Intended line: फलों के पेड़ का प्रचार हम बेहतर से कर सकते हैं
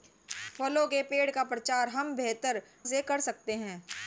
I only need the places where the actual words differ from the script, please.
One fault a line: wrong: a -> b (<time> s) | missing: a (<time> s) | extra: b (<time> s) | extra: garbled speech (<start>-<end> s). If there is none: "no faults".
no faults